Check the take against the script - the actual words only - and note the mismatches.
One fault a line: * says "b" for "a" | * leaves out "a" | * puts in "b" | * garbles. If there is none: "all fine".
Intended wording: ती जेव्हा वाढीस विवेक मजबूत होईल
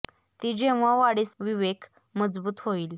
all fine